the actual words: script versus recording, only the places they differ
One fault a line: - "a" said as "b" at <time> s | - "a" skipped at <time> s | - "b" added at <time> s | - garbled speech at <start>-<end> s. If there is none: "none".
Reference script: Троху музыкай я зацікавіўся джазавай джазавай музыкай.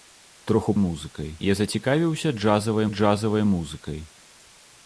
none